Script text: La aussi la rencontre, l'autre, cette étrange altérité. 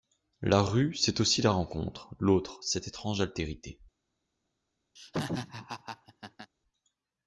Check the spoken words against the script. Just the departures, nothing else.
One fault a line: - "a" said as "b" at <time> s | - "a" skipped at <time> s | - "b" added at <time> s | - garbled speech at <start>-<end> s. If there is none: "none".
- "rue c'est" added at 0.6 s